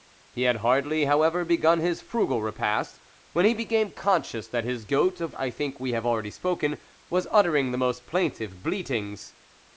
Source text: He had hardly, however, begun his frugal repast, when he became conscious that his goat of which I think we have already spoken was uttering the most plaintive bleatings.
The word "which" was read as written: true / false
false